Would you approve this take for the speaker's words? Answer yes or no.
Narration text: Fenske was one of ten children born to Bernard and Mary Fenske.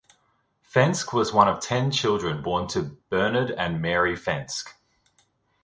yes